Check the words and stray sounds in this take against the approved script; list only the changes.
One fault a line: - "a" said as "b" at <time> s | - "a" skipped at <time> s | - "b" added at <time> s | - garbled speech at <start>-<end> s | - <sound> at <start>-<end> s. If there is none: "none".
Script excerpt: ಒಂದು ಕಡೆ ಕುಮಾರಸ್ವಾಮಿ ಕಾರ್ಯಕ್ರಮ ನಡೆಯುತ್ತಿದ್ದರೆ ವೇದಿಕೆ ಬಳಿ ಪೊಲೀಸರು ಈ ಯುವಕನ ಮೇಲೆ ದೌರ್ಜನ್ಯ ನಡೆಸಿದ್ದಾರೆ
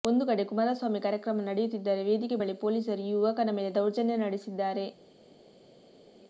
none